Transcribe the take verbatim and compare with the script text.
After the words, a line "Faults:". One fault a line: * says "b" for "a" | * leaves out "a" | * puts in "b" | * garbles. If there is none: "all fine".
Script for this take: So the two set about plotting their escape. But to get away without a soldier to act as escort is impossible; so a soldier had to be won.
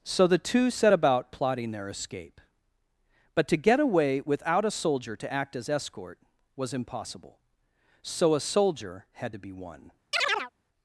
So the two set about plotting their escape. But to get away without a soldier to act as escort was impossible; so a soldier had to be won.
Faults:
* says "was" for "is"